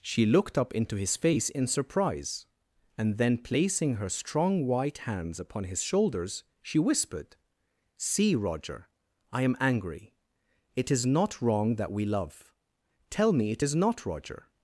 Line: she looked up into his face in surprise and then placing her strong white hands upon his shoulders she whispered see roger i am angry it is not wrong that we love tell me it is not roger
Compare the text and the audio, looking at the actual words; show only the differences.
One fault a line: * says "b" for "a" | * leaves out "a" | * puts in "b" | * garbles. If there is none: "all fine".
all fine